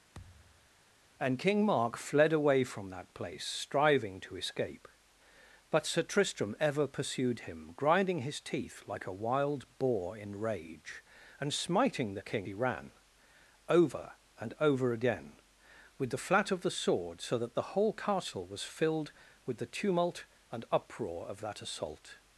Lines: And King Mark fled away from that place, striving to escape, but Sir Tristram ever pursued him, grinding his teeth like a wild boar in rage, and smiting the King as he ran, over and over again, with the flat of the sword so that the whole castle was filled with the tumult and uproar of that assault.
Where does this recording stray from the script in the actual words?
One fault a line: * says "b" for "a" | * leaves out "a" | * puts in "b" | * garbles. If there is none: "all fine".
* leaves out "as"